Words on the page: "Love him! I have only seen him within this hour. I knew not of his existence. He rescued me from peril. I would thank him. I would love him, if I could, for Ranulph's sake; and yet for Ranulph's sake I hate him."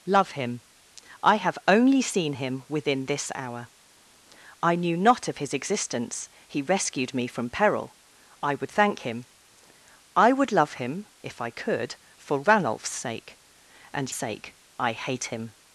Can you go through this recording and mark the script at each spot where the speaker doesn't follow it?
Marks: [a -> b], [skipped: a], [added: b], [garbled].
"Love him! I have only seen him within this hour. I knew not of his existence. He rescued me from peril. I would thank him. I would love him, if I could, for Ranulph's sake; and [skipped: yet for Ranulph's] sake I hate him."